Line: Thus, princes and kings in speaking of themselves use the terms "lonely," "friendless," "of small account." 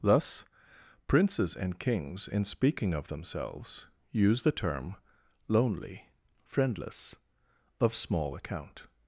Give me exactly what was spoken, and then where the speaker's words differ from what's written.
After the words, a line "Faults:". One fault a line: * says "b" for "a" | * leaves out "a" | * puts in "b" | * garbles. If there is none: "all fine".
Thus, princes and kings in speaking of themselves use the term "lonely," "friendless," "of small account."
Faults:
* says "term" for "terms"